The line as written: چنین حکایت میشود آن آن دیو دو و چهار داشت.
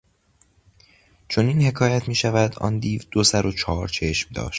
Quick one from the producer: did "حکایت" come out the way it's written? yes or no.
yes